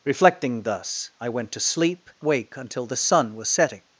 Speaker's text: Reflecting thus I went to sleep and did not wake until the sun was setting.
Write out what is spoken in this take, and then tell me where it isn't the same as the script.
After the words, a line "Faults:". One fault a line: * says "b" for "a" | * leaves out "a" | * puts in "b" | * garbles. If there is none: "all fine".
Reflecting thus I went to sleep wake until the sun was setting.
Faults:
* leaves out "and did not"